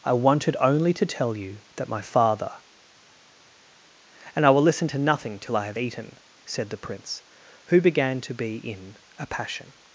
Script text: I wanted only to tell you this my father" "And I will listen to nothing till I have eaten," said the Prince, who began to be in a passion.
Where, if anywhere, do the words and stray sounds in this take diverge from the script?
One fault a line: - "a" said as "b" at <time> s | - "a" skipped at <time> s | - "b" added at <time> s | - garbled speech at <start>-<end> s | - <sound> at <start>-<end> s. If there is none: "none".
- "this" said as "that" at 1.8 s